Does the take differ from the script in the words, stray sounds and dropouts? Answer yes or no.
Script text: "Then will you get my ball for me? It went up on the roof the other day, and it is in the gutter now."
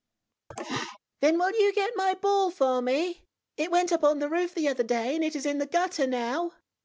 yes